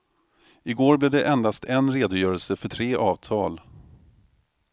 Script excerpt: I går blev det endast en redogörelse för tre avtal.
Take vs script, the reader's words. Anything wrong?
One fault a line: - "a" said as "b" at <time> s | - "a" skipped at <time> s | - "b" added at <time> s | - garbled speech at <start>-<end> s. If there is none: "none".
none